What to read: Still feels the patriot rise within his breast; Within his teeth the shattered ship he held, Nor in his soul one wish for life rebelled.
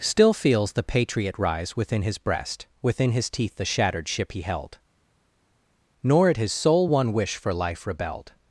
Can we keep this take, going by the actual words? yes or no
no